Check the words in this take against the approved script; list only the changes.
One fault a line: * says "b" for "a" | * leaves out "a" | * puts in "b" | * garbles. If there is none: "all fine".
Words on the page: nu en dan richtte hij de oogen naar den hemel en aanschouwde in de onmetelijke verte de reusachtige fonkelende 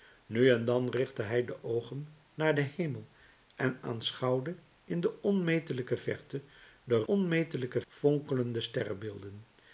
* says "onmetelijke" for "reusachtige"